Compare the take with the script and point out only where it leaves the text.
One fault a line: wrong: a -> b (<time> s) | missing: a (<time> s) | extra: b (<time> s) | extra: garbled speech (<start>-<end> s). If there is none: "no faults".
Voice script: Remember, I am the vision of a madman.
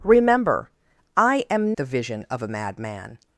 no faults